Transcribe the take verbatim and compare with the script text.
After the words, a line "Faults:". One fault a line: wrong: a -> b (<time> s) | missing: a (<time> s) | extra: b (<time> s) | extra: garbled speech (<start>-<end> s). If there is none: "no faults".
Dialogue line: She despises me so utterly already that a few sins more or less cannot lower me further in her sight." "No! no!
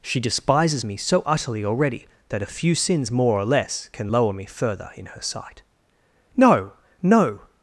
She despises me so utterly already that a few sins more or less can lower me further in her sight." "No! no!
Faults:
wrong: cannot -> can (3.9 s)